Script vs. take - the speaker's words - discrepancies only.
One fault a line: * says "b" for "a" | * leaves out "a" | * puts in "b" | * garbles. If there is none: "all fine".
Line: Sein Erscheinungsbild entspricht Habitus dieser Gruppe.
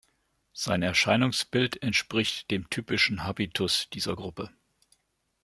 * puts in "dem typischen"